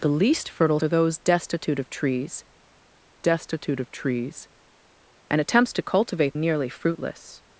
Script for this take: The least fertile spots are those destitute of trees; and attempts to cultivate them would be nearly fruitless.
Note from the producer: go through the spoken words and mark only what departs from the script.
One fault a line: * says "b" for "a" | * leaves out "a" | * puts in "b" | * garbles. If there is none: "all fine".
* leaves out "spots"
* puts in "destitute of trees"
* leaves out "them would be"